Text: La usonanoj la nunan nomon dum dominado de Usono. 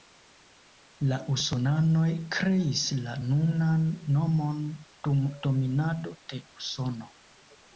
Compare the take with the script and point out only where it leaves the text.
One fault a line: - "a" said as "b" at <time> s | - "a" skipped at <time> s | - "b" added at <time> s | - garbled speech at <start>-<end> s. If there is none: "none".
- "kreis" added at 2.4 s